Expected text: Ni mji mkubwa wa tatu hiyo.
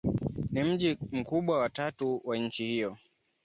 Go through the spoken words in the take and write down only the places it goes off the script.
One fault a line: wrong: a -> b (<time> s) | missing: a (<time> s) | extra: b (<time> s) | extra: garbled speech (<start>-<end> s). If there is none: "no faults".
extra: wa nchi (2.2 s)